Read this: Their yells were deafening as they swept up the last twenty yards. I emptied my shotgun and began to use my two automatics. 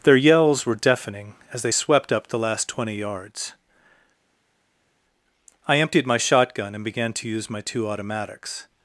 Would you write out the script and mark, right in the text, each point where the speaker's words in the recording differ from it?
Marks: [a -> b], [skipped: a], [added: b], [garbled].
Their yells were deafening as they swept up the last twenty yards. I emptied my shotgun and began to use my two automatics.